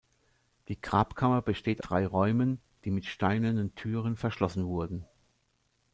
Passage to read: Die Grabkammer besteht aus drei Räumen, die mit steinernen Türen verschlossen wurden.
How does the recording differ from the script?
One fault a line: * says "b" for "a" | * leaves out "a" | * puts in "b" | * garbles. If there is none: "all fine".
* leaves out "aus"